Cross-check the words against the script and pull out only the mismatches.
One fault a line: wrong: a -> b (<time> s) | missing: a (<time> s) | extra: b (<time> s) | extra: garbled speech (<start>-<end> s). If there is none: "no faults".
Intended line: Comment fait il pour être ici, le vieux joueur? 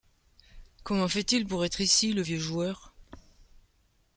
no faults